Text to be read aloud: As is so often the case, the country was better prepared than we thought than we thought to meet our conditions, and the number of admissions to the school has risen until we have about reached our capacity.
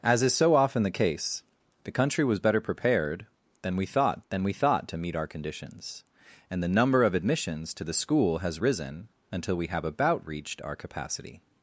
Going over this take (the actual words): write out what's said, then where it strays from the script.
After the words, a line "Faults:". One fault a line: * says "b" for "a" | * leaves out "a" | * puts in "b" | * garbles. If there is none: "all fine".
As is so often the case, the country was better prepared than we thought than we thought to meet our conditions, and the number of admissions to the school has risen until we have about reached our capacity.
Faults:
all fine